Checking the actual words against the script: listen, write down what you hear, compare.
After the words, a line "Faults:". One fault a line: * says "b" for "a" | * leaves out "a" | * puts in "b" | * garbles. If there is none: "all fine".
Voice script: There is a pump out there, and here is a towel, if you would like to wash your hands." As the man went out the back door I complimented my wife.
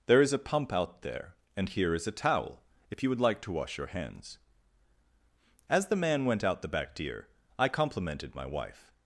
There is a pump out there, and here is a towel, if you would like to wash your hands." As the man went out the back deer I complimented my wife.
Faults:
* says "deer" for "door"